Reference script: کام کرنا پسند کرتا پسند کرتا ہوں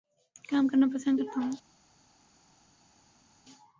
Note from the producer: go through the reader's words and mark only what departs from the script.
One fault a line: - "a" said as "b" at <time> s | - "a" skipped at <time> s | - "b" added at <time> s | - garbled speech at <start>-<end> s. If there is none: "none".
- "پسند کرتا" skipped at 1.4 s